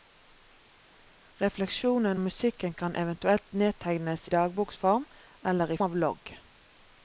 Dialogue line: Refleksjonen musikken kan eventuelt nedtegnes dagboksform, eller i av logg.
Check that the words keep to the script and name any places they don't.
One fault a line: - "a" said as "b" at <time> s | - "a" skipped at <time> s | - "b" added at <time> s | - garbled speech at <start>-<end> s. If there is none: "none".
none